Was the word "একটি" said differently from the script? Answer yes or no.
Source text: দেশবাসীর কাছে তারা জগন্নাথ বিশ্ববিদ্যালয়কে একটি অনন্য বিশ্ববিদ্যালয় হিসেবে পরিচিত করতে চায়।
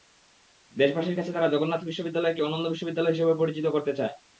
yes